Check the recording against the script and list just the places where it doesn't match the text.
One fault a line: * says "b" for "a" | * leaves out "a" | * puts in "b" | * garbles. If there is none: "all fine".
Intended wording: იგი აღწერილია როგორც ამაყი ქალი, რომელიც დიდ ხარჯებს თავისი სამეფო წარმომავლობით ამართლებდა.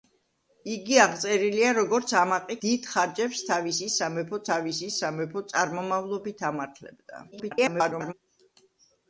* says "დიდ ხარჯებს თავისი სამეფო" for "ქალი რომელიც დიდ ხარჯებს"
* garbles